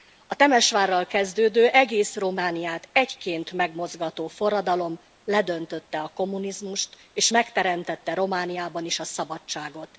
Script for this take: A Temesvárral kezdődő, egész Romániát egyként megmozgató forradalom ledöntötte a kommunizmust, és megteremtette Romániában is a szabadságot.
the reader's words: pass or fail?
pass